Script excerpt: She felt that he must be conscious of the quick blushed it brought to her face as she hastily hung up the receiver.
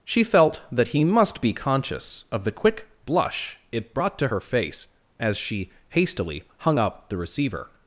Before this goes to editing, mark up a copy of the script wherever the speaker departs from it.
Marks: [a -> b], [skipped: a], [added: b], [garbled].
She felt that he must be conscious of the quick [blushed -> blush] it brought to her face as she hastily hung up the receiver.